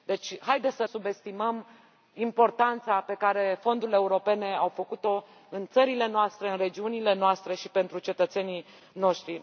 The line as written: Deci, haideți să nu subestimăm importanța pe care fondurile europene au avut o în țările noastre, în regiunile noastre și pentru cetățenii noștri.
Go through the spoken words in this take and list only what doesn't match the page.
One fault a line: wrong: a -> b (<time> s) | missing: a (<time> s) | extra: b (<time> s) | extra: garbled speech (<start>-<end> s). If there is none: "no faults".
missing: nu (0.8 s)